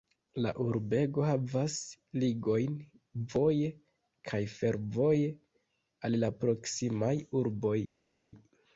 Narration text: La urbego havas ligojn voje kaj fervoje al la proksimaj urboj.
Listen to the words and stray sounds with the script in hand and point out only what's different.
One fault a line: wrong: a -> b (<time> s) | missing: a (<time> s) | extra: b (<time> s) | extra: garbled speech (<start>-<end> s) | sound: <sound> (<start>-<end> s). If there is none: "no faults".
no faults